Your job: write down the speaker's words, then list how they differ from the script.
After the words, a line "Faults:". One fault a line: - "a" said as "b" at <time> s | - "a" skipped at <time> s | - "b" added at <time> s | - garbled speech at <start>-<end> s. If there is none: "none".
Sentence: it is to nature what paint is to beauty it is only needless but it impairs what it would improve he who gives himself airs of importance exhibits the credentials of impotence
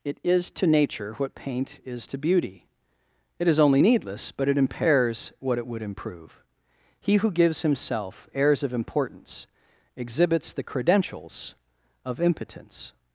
it is to nature what paint is to beauty it is only needless but it impairs what it would improve he who gives himself airs of importance exhibits the credentials of impotence
Faults:
none